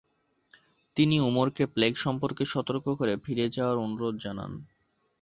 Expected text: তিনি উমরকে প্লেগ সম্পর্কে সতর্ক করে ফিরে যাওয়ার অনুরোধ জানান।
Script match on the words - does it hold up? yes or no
yes